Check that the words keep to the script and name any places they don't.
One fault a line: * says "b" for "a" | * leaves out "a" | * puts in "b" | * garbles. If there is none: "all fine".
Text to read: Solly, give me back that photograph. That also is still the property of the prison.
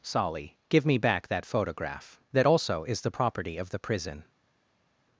* leaves out "still"